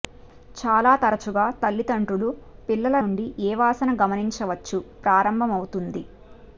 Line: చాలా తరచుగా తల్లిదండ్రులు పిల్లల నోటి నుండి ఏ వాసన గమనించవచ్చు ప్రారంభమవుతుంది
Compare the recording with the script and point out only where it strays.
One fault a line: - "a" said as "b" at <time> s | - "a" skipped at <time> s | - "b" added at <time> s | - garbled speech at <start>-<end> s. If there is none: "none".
- "నోటి" skipped at 3.0 s